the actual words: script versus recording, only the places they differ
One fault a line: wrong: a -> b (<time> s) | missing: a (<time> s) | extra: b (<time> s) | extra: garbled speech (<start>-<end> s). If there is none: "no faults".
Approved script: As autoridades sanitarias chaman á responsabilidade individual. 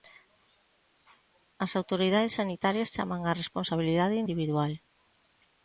no faults